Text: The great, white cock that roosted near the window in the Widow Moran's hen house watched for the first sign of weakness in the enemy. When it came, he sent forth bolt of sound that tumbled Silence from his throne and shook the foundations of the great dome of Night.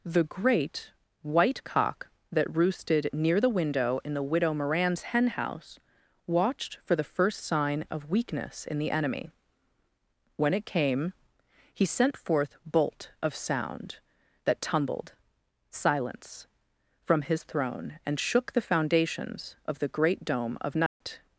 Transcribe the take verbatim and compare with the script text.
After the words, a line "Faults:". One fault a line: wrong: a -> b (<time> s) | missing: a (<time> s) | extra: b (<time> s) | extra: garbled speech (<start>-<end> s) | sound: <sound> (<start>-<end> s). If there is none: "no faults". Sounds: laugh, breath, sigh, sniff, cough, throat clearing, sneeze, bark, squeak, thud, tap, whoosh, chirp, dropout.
The great, white cock that roosted near the window in the Widow Moran's hen house watched for the first sign of weakness in the enemy. When it came, he sent forth bolt of sound that tumbled Silence from his throne and shook the foundations of the great dome of Night.
Faults:
sound: dropout (20.9-21.0 s)